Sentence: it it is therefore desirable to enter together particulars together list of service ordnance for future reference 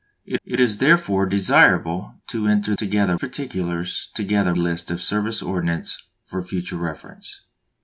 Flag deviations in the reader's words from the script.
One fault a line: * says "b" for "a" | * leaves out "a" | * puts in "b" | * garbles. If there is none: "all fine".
all fine